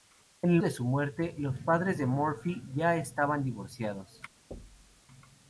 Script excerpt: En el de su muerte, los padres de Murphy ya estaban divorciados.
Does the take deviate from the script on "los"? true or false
false